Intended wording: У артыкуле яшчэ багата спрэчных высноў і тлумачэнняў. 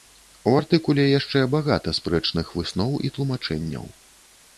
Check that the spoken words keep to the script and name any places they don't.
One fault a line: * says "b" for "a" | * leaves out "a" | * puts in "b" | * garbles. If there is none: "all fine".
all fine